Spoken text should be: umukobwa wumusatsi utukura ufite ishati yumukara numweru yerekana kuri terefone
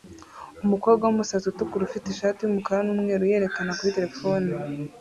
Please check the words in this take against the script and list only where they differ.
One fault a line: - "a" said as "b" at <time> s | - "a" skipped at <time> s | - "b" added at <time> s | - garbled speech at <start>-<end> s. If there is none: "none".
none